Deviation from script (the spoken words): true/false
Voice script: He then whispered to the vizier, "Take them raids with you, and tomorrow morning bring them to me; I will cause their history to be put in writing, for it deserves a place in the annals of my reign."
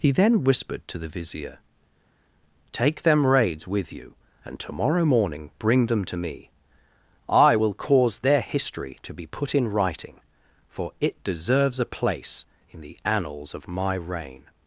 false